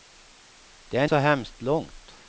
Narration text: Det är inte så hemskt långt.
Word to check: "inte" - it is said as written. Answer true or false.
false